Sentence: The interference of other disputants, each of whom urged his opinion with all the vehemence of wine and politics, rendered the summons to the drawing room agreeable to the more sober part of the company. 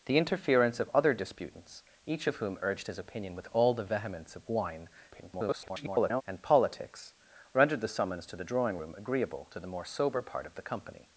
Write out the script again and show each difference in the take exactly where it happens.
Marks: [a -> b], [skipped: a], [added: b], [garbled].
The interference of other disputants, each of whom urged his opinion with all the vehemence of wine [garbled] and politics, rendered the summons to the drawing room agreeable to the more sober part of the company.